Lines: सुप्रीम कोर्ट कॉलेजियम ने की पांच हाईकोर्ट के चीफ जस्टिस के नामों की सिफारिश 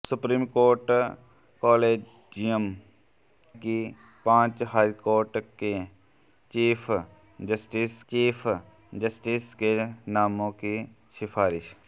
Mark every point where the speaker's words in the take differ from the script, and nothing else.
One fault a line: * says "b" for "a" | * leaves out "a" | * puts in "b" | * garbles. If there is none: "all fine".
* leaves out "ने"
* puts in "चीफ जस्टिस"